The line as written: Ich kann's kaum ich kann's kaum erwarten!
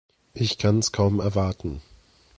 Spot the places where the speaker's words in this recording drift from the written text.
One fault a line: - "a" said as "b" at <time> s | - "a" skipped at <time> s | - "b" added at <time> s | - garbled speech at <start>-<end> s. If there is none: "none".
- "ich kann's kaum" skipped at 1.2 s